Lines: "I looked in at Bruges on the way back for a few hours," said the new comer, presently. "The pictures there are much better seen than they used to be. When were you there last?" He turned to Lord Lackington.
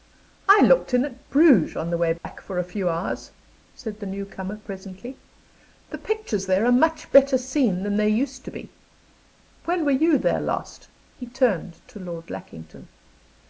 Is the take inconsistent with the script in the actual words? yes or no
no